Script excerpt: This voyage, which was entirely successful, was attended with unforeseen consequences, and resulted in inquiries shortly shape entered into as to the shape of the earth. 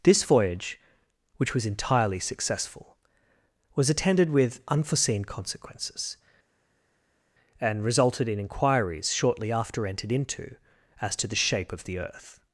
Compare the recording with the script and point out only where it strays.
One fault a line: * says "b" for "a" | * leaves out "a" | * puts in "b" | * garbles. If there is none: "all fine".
* says "after" for "shape"